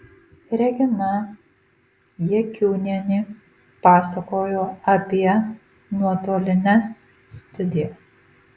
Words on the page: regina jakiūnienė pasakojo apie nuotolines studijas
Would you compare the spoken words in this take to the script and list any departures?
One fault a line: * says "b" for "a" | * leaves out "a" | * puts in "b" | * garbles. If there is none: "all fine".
all fine